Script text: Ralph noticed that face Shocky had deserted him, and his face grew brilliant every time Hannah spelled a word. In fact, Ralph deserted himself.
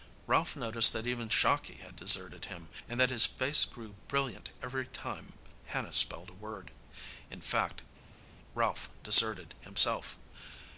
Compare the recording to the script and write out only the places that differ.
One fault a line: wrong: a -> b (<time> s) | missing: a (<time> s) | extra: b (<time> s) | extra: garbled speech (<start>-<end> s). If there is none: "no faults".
wrong: face -> even (1.1 s)
extra: that (3.0 s)